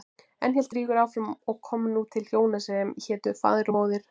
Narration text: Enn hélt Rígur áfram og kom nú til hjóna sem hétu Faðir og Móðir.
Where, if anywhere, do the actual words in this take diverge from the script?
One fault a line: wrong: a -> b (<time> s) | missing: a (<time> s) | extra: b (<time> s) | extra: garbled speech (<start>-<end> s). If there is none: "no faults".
no faults